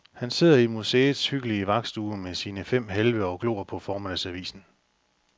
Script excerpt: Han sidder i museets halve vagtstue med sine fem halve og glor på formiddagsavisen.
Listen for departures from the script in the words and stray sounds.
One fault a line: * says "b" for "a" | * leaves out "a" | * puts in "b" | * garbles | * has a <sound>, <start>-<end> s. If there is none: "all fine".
* says "hyggelige" for "halve"